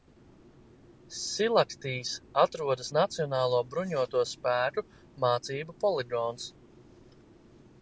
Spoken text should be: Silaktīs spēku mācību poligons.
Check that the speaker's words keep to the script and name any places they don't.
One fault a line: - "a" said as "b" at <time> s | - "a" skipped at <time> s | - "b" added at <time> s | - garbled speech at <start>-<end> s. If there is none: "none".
- "atrodas Nacionālo bruņoto" added at 2.5 s